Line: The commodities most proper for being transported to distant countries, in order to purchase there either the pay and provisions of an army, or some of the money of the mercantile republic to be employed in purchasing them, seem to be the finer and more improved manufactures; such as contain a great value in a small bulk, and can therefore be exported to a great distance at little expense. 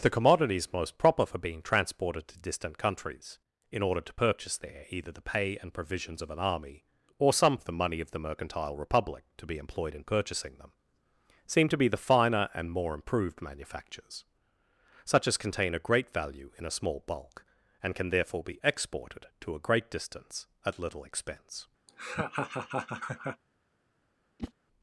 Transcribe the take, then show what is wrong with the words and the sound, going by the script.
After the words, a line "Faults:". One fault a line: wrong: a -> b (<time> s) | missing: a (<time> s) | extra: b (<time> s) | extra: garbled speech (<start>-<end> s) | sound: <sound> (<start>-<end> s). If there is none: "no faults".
The commodities most proper for being transported to distant countries, in order to purchase there either the pay and provisions of an army, or some of the money of the mercantile republic to be employed in purchasing them, seem to be the finer and more improved manufactures; such as contain a great value in a small bulk, and can therefore be exported to a great distance at little expense.
Faults:
sound: laugh (21.9-23.4 s)
sound: whoosh (24.4-24.5 s)